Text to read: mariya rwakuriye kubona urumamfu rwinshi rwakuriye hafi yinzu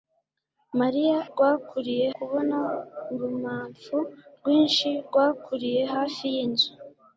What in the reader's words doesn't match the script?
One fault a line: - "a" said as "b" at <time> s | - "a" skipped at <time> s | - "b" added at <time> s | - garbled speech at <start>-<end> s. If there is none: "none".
none